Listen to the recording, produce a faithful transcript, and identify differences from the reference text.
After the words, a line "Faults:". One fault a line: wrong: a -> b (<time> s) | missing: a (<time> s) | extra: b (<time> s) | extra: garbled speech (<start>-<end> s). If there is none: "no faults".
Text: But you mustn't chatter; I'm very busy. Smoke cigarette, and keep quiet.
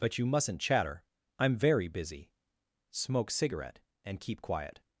But you mustn't chatter; I'm very busy. Smoke cigarette, and keep quiet.
Faults:
no faults